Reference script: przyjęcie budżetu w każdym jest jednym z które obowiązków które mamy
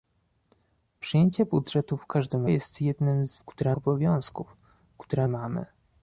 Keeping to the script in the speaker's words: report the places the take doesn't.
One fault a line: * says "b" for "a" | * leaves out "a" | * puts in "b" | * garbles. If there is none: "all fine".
all fine